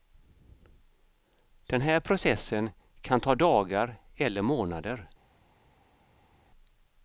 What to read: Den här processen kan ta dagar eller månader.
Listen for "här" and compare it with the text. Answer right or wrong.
right